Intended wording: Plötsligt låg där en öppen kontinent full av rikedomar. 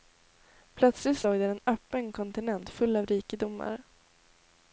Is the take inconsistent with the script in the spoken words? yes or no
no